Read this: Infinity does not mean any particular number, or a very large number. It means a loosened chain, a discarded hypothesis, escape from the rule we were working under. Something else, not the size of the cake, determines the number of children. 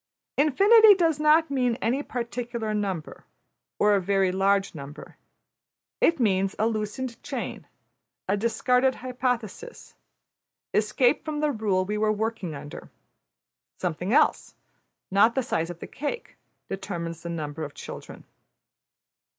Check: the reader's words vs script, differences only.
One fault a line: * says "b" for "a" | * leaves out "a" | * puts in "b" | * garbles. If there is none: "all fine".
all fine